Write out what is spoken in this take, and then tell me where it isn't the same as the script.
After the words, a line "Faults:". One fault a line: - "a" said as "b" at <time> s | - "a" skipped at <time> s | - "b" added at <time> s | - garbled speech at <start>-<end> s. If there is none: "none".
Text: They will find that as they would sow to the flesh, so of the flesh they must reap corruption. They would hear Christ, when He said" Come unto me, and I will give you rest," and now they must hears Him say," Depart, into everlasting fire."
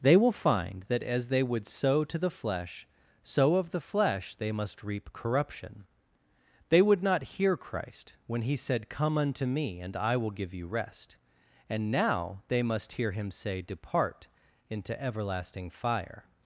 They will find that as they would sow to the flesh, so of the flesh they must reap corruption. They would not hear Christ, when He said" Come unto me, and I will give you rest," and now they must hear Him say," Depart, into everlasting fire."
Faults:
- "not" added at 7.0 s
- "hears" said as "hear" at 12.9 s